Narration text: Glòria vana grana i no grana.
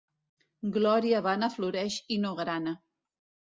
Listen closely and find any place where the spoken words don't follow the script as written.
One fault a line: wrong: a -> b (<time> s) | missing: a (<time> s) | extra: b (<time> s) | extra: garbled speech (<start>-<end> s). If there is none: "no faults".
wrong: grana -> floreix (1.6 s)